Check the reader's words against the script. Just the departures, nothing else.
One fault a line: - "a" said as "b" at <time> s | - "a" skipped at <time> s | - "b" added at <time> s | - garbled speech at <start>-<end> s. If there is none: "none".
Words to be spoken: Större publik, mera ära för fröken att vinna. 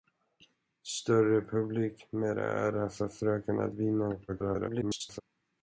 - garbled speech at 4.3-5.2 s